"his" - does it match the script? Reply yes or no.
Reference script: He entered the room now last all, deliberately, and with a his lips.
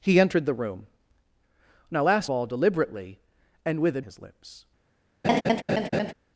yes